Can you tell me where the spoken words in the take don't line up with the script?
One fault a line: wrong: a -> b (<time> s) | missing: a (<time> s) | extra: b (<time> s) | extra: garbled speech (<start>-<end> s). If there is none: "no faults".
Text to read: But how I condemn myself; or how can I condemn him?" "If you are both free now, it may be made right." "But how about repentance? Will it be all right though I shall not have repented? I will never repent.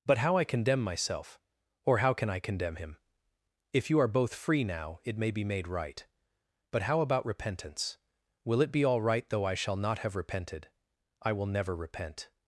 no faults